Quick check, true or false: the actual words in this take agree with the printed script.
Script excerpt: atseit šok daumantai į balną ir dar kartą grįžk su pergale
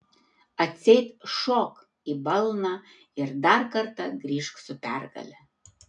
false